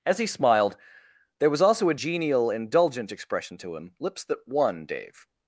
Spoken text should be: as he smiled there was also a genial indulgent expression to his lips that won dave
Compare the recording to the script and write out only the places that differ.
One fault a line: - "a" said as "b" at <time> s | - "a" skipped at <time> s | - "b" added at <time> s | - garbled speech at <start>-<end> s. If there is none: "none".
- "his" said as "him" at 3.7 s